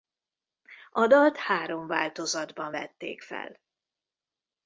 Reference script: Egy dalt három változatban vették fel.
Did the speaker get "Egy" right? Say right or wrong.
wrong